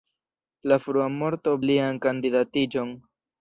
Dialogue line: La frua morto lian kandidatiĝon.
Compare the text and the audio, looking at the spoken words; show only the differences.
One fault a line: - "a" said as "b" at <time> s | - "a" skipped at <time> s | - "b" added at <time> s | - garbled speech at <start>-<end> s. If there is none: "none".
none